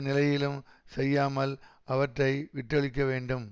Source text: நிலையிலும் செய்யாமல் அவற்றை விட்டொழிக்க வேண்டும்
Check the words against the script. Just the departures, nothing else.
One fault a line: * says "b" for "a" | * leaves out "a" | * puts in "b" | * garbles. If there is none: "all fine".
all fine